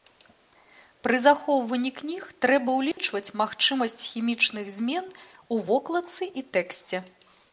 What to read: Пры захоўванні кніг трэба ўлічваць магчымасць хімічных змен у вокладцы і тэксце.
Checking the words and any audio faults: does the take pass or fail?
fail